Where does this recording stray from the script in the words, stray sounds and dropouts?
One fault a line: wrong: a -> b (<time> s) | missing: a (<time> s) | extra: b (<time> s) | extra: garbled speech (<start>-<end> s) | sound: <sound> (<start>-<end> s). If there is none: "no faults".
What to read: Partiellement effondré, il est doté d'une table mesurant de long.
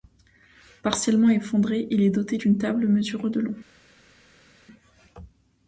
no faults